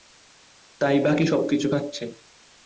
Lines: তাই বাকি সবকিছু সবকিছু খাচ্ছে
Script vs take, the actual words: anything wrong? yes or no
yes